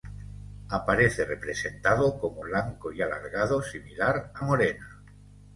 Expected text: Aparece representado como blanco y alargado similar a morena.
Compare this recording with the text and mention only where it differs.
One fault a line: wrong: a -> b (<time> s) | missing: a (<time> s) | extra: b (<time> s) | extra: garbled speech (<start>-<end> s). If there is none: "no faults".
no faults